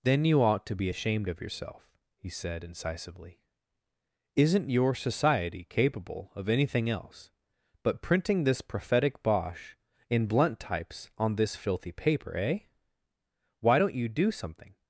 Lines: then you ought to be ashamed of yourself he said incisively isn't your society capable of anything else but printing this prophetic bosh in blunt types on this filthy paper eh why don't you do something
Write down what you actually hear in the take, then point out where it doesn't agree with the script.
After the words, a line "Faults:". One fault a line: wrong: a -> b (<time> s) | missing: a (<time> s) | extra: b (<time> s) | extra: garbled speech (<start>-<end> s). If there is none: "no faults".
then you ought to be ashamed of yourself he said incisively isn't your society capable of anything else but printing this prophetic bosh in blunt types on this filthy paper eh why don't you do something
Faults:
no faults